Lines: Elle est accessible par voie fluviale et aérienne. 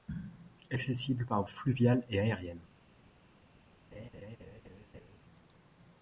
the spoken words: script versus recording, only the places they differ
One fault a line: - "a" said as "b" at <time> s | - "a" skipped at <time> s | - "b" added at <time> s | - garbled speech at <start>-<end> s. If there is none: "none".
- "est" skipped at 0.8 s
- "voie" skipped at 1.4 s